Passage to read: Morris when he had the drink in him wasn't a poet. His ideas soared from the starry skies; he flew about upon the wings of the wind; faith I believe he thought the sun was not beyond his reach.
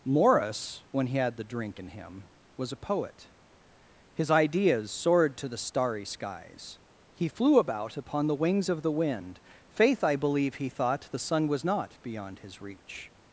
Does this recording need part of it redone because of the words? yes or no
yes